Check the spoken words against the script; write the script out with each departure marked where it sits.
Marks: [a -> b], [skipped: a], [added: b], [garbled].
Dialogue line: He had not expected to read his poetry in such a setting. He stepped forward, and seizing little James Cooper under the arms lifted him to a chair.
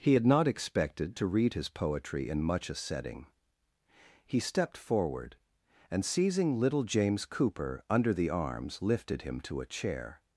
He had not expected to read his poetry in [such -> much] a setting. He stepped forward, and seizing little James Cooper under the arms lifted him to a chair.